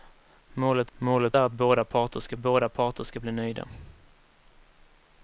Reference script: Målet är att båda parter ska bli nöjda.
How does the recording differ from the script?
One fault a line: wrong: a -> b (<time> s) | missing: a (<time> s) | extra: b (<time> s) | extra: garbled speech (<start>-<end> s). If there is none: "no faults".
extra: målet (1.0 s)
extra: båda parter ska (2.4 s)